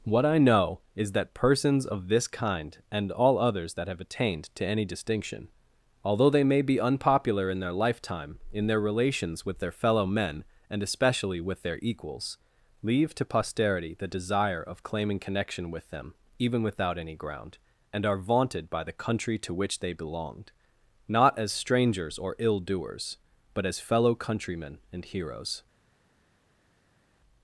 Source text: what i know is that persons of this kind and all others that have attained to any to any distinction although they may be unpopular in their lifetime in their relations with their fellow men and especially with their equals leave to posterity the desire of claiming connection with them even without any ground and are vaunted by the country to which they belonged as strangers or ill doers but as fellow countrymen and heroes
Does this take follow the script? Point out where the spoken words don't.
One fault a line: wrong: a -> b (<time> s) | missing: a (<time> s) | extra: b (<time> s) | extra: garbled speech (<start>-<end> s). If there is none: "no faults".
missing: to any (4.8 s)
extra: not (21.1 s)